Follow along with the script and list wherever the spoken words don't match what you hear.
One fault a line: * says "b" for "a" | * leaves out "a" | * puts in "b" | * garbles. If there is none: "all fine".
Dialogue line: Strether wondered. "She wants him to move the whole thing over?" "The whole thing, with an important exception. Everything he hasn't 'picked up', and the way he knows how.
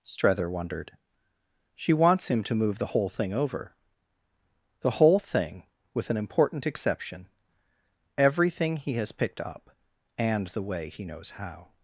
* says "has" for "hasn't"